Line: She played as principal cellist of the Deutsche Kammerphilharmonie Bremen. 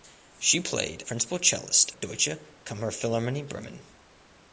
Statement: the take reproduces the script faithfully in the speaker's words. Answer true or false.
false